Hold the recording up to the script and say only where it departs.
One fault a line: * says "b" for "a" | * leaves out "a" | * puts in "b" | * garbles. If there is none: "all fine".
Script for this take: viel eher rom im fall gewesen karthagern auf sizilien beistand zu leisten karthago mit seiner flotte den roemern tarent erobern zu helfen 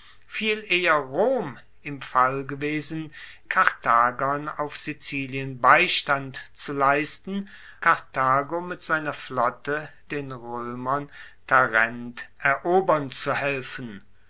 all fine